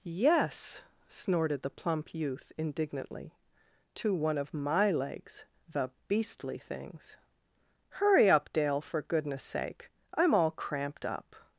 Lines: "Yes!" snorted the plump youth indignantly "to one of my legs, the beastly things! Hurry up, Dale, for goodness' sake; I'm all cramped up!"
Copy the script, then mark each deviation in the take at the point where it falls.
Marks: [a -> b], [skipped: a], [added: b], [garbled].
"Yes!" snorted the plump youth indignantly "to one of my legs, the beastly things! Hurry up, Dale, for goodness' sake; I'm all cramped up!"